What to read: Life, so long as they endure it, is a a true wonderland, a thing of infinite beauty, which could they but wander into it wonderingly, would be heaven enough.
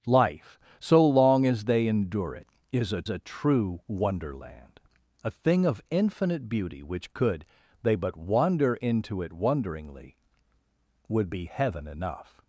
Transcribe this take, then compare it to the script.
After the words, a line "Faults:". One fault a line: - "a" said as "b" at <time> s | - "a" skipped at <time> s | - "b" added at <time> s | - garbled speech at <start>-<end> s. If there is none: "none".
Life, so long as they endure it, is a a true wonderland, a thing of infinite beauty, which could they but wander into it wonderingly, would be heaven enough.
Faults:
none